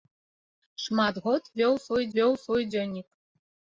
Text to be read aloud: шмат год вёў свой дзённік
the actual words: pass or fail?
fail